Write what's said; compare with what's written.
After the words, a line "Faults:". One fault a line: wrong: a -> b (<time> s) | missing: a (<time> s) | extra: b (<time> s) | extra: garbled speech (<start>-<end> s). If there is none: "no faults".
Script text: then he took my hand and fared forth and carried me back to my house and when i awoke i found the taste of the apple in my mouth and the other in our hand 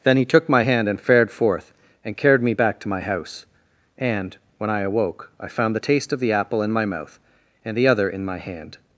then he took my hand and fared forth and carried me back to my house and when i awoke i found the taste of the apple in my mouth and the other in my hand
Faults:
wrong: our -> my (8.2 s)